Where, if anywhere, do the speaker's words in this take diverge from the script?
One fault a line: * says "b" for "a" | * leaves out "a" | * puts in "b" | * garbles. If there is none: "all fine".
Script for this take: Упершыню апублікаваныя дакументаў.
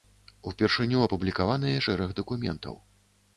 * puts in "шэраг"